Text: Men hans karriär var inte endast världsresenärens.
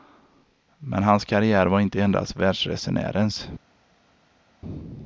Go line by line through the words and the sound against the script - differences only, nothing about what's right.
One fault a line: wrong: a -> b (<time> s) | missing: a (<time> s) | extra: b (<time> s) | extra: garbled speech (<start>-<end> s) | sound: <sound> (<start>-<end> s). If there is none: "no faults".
no faults